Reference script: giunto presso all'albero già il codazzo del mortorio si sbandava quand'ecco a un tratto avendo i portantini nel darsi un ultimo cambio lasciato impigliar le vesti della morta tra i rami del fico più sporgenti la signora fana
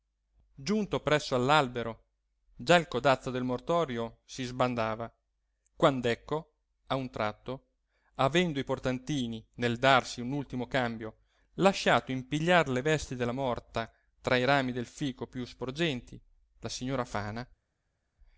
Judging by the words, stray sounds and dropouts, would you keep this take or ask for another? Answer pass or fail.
pass